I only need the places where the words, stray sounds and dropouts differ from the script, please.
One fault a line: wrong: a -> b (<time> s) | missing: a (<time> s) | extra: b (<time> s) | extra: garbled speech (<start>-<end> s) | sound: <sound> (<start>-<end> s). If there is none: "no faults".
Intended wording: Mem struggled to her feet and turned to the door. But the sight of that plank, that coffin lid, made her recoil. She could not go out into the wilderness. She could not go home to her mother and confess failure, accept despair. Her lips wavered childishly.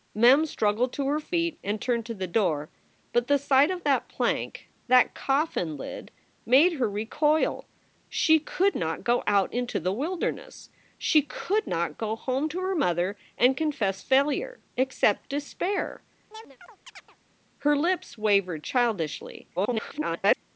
sound: chirp (16.3-17.2 s)
extra: garbled speech (19.6-20.4 s)